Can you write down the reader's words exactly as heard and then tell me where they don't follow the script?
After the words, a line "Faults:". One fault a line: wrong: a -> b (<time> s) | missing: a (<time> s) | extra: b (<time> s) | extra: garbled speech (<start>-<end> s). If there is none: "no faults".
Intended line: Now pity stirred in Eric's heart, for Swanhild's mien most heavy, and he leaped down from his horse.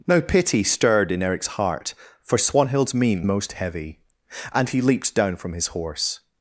Now pity stirred in Eric's heart, for Swanhild's mien most heavy, and he leaped down from his horse.
Faults:
no faults